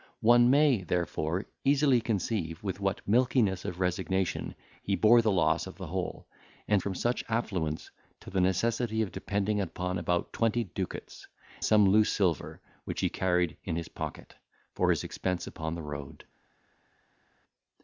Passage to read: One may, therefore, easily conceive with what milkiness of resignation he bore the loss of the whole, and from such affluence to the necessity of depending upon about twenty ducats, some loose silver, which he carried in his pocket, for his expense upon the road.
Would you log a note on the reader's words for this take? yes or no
no